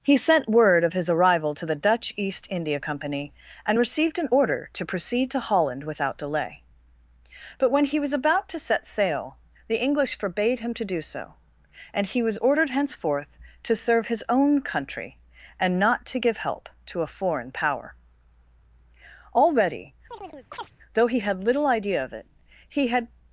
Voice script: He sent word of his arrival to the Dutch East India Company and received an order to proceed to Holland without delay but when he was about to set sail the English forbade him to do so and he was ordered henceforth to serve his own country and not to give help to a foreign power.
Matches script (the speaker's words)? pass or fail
fail